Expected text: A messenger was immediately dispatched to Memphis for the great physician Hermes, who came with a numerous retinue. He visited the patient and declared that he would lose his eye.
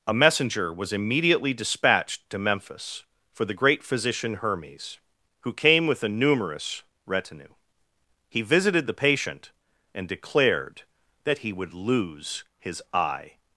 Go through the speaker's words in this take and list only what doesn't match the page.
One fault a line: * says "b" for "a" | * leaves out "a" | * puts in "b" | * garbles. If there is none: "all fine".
all fine